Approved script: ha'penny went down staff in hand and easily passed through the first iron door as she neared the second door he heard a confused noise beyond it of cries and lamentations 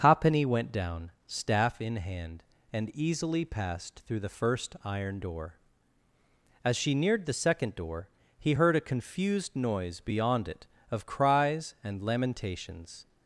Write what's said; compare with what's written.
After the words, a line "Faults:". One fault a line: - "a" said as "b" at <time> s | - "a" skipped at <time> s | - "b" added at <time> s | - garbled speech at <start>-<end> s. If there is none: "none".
ha'penny went down staff in hand and easily passed through the first iron door as she neared the second door he heard a confused noise beyond it of cries and lamentations
Faults:
none